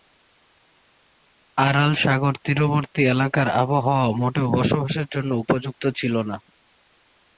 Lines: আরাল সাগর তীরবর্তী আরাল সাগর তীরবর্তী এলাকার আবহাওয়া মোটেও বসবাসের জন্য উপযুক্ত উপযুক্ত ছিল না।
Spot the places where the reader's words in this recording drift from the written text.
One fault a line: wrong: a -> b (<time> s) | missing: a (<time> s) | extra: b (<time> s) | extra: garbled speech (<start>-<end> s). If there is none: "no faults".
missing: আরাল সাগর তীরবর্তী (3.0 s)
missing: উপযুক্ত (5.8 s)